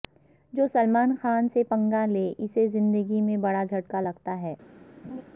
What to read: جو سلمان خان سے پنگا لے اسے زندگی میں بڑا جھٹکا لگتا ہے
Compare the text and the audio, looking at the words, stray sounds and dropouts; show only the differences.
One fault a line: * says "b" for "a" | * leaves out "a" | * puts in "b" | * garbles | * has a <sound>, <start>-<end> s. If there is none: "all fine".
* has a laugh, 5.0-5.2 s